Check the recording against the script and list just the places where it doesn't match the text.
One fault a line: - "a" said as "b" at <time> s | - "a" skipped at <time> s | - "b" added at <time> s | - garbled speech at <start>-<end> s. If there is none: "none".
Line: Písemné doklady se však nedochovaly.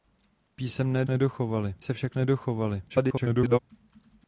- "doklady" said as "nedochovaly" at 1.1 s
- garbled speech at 2.9-3.6 s